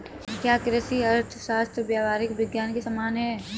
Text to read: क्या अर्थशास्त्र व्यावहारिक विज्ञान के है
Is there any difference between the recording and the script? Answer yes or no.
yes